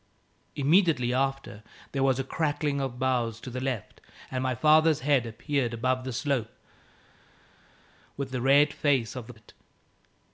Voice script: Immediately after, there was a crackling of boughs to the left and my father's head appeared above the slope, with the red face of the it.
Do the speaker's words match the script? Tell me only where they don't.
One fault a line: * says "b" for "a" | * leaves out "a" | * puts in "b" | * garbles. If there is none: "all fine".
all fine